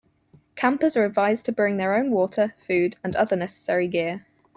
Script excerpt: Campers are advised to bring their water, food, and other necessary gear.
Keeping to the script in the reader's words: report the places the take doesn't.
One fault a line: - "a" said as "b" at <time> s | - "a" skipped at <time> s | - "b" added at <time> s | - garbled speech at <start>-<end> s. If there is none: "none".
- "own" added at 1.9 s